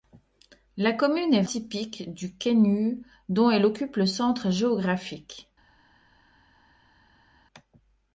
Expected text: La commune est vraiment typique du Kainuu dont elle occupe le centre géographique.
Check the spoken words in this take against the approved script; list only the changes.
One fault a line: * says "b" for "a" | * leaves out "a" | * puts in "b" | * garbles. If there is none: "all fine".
* leaves out "vraiment"